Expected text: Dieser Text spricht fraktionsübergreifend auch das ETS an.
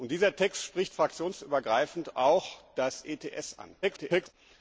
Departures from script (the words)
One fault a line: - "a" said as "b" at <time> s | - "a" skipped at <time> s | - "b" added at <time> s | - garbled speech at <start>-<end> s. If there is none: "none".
- garbled speech at 3.8-4.3 s